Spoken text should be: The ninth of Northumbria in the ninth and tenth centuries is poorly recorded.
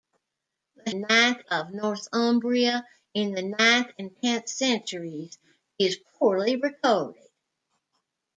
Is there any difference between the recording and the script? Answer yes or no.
no